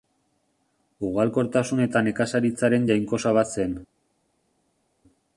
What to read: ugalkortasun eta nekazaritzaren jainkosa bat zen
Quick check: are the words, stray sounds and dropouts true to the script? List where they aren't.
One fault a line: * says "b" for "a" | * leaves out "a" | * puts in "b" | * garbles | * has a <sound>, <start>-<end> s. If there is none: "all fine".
all fine